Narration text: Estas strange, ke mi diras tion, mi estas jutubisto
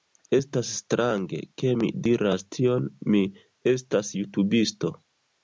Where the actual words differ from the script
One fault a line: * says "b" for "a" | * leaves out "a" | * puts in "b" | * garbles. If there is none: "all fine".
all fine